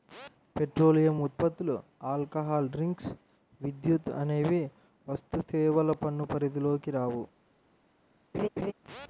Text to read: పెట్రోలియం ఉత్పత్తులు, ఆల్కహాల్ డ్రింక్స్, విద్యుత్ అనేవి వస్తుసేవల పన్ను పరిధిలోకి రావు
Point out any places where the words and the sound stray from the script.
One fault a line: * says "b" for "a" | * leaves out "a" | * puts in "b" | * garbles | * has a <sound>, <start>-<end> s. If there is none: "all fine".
* has a laugh, 8.3-8.7 s